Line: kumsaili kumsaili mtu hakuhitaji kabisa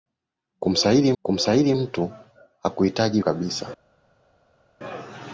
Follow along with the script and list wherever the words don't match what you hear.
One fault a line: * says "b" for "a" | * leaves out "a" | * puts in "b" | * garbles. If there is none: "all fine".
all fine